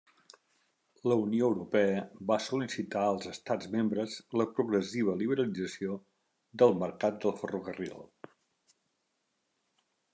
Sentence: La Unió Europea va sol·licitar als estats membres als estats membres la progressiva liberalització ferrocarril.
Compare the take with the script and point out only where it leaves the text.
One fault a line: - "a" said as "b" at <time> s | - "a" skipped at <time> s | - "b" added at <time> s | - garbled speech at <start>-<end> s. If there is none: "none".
- "als estats membres la progressiva liberalització" said as "la progressiva liberalització del mercat del" at 4.4 s